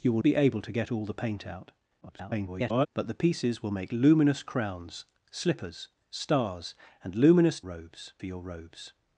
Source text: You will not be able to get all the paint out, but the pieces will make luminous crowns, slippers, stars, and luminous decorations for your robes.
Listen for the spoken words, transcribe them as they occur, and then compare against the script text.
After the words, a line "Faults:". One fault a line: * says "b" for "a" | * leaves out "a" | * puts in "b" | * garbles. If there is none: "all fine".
You will be able to get all the paint out, [garbled] but the pieces will make luminous crowns, slippers, stars, and luminous robes for your robes.
Faults:
* leaves out "not"
* garbles
* says "robes" for "decorations"